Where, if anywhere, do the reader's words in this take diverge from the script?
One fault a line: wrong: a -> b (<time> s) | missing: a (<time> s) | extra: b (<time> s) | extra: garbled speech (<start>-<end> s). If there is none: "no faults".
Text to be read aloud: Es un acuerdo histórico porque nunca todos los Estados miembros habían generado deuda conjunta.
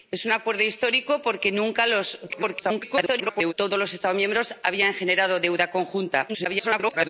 extra: garbled speech (2.3-3.5 s)
extra: garbled speech (6.3-7.1 s)